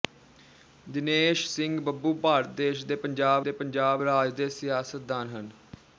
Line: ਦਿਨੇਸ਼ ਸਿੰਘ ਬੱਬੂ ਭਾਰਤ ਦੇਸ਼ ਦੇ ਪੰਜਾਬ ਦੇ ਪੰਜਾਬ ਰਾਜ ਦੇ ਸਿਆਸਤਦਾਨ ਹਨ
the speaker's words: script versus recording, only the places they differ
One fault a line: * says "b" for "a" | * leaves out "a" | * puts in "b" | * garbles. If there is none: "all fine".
all fine